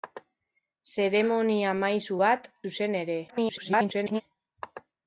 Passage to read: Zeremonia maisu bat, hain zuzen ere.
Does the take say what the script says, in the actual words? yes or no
no